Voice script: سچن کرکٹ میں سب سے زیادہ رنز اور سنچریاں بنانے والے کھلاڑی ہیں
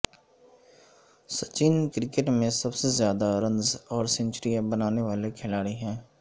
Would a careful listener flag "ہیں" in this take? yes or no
no